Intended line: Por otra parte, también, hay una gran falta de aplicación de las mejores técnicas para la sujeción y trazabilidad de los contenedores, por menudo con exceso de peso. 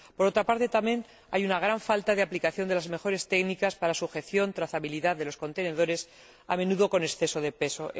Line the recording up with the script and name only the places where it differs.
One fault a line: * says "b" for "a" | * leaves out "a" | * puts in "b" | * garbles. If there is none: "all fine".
* says "a" for "por"